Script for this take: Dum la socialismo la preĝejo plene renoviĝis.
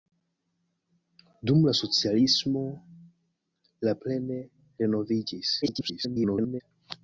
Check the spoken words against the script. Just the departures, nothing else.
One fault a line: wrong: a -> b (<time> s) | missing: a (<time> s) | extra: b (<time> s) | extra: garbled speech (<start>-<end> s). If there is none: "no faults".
missing: preĝejo (3.9 s)
extra: garbled speech (5.6-6.6 s)